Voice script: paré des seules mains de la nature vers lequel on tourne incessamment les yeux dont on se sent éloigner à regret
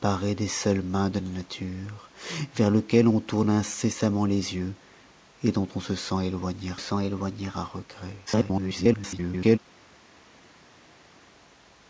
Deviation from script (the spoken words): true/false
true